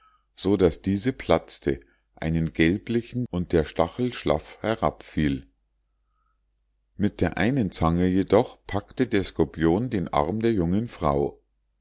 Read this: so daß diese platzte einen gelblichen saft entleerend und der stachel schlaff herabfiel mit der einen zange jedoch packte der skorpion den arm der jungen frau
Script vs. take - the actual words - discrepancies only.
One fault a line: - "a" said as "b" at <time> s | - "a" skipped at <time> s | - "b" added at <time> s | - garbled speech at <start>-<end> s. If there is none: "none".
- "saft entleerend" skipped at 3.3 s